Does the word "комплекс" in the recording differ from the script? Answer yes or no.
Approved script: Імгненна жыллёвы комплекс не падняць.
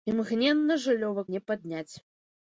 yes